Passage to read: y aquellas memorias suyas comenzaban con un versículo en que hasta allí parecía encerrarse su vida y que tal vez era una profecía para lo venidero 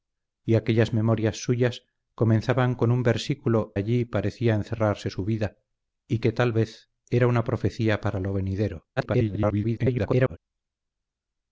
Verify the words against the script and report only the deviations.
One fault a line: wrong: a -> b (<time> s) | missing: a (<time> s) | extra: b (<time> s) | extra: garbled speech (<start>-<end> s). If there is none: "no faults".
missing: en que hasta (3.8 s)
extra: garbled speech (9.0-10.4 s)